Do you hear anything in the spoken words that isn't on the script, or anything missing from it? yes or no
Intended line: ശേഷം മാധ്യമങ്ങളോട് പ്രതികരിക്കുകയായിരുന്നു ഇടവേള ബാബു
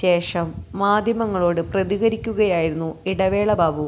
no